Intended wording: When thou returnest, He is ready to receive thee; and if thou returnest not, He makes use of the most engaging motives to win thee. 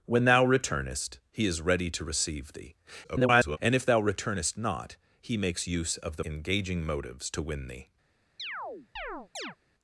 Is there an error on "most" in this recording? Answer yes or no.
yes